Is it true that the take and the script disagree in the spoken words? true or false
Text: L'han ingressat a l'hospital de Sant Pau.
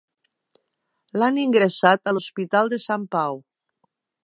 false